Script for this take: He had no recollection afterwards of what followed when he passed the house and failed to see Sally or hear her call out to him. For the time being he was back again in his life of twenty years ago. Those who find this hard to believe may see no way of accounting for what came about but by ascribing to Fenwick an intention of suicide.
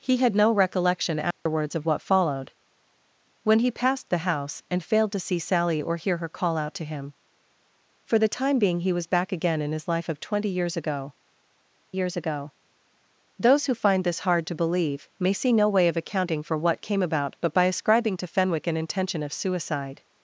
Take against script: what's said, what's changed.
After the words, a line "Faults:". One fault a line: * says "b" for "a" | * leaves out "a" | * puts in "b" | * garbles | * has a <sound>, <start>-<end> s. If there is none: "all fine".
He had no recollection afterwards of what followed when he passed the house and failed to see Sally or hear her call out to him. For the time being he was back again in his life of twenty years ago years ago. Those who find this hard to believe may see no way of accounting for what came about but by ascribing to Fenwick an intention of suicide.
Faults:
* has a dropout, 1.3-1.5 s
* puts in "years ago"